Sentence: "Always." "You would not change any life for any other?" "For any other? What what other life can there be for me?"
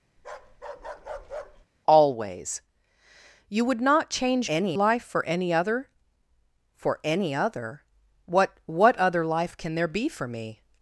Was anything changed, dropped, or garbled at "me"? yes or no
no